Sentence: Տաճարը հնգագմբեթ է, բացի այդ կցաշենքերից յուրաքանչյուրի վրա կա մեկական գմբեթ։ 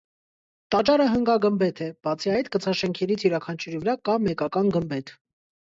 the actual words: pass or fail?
pass